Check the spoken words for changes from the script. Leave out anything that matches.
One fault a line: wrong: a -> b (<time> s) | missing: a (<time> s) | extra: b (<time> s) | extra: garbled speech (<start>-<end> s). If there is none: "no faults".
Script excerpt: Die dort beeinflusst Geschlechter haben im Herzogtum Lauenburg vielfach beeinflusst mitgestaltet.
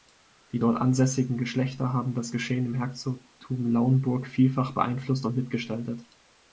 wrong: beeinflusst -> ansässigen (0.8 s)
extra: das Geschehen (2.1 s)
extra: und (5.2 s)